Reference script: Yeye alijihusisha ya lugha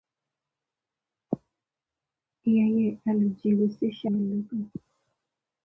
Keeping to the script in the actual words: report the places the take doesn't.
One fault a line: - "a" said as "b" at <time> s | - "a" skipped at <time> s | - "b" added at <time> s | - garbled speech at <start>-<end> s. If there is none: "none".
none